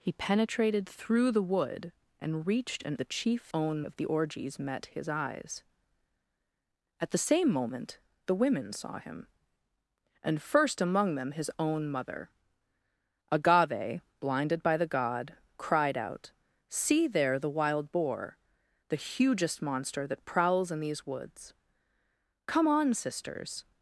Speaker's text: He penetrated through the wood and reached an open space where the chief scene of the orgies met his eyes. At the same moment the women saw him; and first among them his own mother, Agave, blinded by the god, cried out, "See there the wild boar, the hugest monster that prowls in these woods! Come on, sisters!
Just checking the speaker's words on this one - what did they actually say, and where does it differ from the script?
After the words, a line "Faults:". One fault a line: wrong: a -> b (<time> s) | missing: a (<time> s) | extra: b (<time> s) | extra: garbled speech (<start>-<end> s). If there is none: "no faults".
He penetrated through the wood and reached an the chief own of the orgies met his eyes. At the same moment the women saw him; and first among them his own mother, Agave, blinded by the god, cried out, "See there the wild boar, the hugest monster that prowls in these woods! Come on, sisters!
Faults:
missing: open space where (3.0 s)
wrong: scene -> own (3.5 s)